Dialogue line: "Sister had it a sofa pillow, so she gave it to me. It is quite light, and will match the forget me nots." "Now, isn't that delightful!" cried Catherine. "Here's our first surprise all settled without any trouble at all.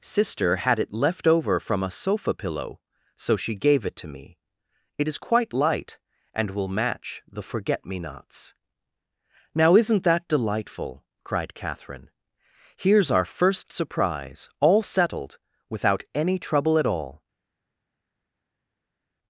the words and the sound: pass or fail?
fail